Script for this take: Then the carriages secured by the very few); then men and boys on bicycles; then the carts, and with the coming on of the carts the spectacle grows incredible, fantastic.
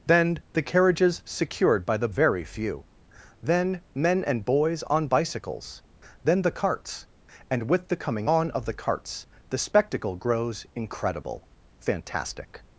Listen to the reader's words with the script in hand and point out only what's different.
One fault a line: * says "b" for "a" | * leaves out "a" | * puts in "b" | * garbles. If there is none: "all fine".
all fine